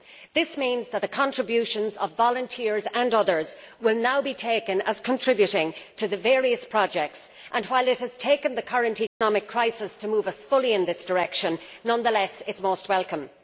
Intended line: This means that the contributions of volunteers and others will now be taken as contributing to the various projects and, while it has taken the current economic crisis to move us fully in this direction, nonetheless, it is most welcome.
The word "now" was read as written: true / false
true